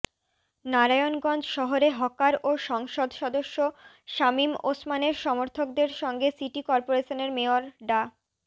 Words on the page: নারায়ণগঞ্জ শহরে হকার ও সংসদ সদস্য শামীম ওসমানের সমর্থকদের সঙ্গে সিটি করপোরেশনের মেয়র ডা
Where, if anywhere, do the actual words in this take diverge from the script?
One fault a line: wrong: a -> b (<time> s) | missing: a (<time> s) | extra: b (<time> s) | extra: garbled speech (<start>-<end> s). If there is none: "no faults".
no faults